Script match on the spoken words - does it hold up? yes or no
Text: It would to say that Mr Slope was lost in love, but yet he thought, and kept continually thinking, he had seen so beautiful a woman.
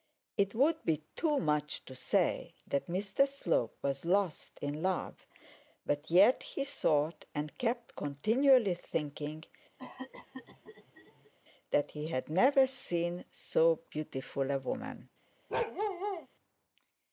no